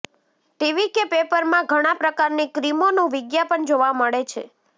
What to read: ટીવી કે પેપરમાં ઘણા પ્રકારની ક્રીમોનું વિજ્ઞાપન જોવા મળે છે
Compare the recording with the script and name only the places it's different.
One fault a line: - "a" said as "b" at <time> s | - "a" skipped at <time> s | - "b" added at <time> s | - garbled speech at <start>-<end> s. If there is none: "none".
none